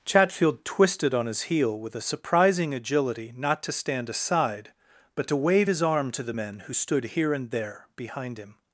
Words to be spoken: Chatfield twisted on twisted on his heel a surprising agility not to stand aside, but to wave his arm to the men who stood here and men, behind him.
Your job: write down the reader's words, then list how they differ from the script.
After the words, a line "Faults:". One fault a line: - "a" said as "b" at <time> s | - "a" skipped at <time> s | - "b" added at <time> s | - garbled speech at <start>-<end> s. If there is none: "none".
Chatfield twisted on his heel with a surprising agility not to stand aside, but to wave his arm to the men who stood here and there, behind him.
Faults:
- "twisted on" skipped at 1.3 s
- "with" added at 1.8 s
- "men" said as "there" at 7.5 s